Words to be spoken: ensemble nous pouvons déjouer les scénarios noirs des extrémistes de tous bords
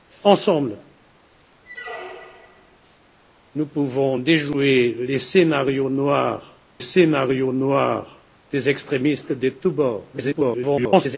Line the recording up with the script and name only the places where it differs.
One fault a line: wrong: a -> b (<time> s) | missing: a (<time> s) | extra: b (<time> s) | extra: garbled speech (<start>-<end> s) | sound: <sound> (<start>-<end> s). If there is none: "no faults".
sound: squeak (1.6-2.8 s)
extra: scénarios noirs (6.8 s)
extra: garbled speech (10.1-11.2 s)